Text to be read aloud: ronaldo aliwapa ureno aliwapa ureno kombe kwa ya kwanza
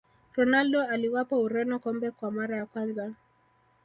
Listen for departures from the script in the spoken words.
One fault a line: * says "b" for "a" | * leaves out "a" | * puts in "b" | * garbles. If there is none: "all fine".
* leaves out "aliwapa ureno"
* puts in "mara"